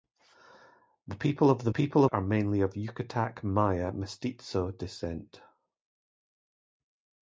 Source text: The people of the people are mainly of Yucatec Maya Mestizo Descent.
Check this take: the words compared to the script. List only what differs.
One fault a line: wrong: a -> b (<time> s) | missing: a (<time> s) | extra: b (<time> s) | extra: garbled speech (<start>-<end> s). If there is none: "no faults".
no faults